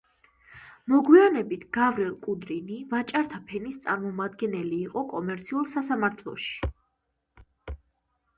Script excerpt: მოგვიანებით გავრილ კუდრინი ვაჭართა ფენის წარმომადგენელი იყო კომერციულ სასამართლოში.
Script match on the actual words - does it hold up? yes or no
yes